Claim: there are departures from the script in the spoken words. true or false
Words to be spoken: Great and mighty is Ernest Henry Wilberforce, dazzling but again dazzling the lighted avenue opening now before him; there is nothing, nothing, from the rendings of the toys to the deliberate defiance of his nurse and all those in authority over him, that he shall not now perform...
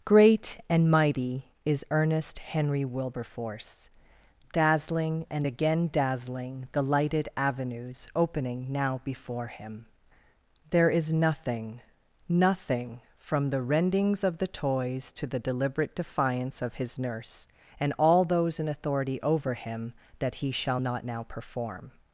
true